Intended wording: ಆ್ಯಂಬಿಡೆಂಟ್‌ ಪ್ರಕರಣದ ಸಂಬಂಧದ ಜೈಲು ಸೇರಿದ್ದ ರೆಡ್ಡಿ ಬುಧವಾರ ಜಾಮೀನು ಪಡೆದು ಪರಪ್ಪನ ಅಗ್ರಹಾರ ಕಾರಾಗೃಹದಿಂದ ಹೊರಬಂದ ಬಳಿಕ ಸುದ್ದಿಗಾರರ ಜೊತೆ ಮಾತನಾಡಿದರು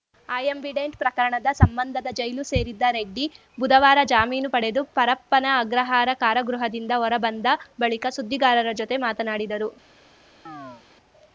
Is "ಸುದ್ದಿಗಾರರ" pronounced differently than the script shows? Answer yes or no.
no